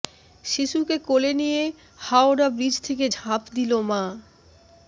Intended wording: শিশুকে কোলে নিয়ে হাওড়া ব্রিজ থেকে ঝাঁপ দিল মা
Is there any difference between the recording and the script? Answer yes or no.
no